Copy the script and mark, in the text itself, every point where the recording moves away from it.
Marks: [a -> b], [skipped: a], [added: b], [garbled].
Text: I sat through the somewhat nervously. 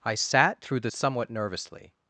I sat through the somewhat nervously.